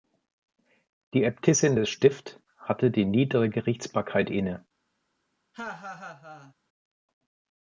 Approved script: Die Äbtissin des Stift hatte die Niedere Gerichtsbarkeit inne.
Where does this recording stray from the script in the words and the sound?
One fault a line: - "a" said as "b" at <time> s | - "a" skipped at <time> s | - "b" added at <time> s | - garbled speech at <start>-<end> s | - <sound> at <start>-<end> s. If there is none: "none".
- laugh at 5.5-6.5 s